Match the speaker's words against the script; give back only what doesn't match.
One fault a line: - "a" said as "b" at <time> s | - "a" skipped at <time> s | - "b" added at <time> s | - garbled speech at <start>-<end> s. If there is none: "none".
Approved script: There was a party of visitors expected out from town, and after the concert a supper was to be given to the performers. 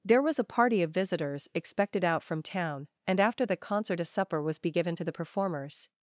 - "to" skipped at 4.6 s